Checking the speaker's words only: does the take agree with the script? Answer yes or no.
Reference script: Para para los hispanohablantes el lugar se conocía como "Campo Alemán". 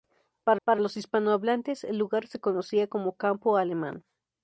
yes